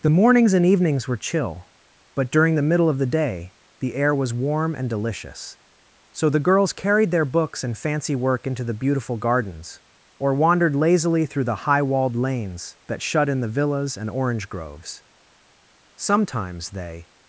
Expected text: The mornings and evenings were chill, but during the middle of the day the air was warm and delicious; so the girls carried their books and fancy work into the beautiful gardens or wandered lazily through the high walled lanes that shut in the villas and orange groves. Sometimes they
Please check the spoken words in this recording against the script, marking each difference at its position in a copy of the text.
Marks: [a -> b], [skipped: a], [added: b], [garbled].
The mornings and evenings were chill, but during the middle of the day the air was warm and delicious; so the girls carried their books and fancy work into the beautiful gardens or wandered lazily through the high walled lanes that shut in the villas and orange groves. Sometimes they